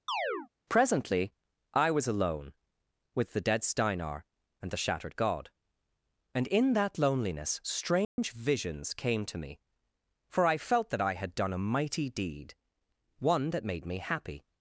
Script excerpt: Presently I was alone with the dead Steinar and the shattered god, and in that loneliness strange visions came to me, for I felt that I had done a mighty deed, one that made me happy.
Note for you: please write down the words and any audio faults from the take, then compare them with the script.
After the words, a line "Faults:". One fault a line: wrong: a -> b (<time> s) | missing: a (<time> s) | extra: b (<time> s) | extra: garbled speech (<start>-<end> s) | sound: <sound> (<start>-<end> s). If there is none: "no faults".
Presently I was alone with the dead Steinar and the shattered god, and in that loneliness strange visions came to me, for I felt that I had done a mighty deed, one that made me happy.
Faults:
sound: chirp (0.1-0.5 s)
sound: dropout (8.0-8.2 s)